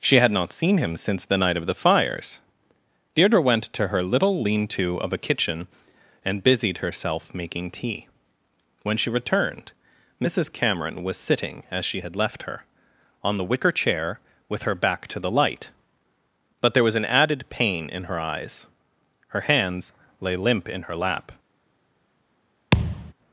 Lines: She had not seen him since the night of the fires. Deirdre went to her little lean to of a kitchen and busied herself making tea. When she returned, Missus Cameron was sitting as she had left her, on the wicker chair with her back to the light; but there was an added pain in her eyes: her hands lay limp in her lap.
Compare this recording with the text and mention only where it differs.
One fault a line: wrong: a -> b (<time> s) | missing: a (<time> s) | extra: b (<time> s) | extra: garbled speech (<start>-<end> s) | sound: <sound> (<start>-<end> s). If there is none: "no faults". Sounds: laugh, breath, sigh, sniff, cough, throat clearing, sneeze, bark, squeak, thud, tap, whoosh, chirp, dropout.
sound: thud (22.7-23.1 s)